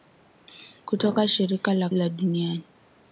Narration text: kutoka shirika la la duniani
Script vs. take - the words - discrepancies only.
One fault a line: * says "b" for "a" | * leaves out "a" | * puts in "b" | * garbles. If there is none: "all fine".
all fine